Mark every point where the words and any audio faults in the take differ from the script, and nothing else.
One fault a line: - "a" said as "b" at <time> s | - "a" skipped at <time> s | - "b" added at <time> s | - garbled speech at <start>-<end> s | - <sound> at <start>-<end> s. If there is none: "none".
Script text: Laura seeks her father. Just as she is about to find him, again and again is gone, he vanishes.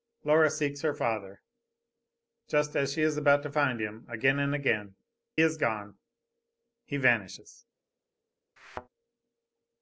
- thud at 8.6-8.9 s